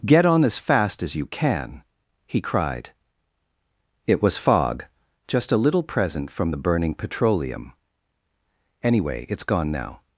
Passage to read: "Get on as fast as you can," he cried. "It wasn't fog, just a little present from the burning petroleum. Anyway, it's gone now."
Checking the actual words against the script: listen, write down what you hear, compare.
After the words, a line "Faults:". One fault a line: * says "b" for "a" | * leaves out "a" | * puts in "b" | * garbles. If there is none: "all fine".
"Get on as fast as you can," he cried. "It was fog, just a little present from the burning petroleum. Anyway, it's gone now."
Faults:
* says "was" for "wasn't"